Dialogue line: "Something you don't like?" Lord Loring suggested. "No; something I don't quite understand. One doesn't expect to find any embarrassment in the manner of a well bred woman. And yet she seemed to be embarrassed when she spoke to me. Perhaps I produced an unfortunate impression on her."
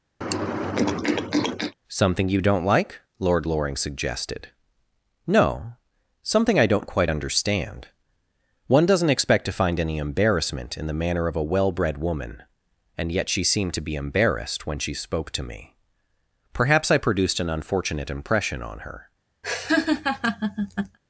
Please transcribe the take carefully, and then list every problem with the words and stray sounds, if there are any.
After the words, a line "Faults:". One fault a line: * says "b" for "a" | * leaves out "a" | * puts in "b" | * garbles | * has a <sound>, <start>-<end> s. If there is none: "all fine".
"Something you don't like?" Lord Loring suggested. "No; something I don't quite understand. One doesn't expect to find any embarrassment in the manner of a well bred woman. And yet she seemed to be embarrassed when she spoke to me. Perhaps I produced an unfortunate impression on her."
Faults:
* has a throat clearing, 0.2-1.7 s
* has a laugh, 19.4-21.0 s